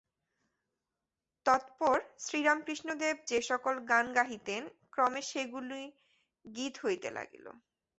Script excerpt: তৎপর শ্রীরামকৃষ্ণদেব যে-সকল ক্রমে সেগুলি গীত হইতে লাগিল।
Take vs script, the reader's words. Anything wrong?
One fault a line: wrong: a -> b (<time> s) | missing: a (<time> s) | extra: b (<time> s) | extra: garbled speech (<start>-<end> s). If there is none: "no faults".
extra: গান গাহিতেন (3.9 s)